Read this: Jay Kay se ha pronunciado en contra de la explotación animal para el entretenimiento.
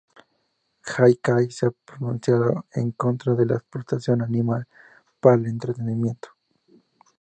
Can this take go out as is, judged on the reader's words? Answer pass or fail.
pass